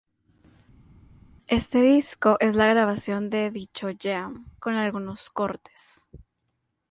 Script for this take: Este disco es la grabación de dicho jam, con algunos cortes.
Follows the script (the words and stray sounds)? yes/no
yes